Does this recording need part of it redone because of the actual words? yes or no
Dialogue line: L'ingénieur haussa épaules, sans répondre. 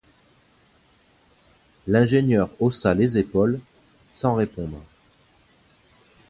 yes